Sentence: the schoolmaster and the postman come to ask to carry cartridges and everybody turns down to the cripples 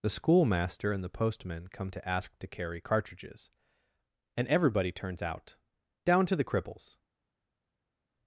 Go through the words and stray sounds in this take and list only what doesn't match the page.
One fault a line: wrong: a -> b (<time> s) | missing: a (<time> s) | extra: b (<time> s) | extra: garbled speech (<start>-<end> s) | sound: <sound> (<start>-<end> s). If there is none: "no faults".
extra: out (5.2 s)